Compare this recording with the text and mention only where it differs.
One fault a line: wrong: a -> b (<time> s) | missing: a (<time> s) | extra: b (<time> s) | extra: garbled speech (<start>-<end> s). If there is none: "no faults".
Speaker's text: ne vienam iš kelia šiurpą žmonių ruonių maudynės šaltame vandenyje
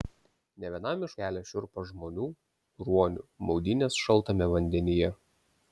no faults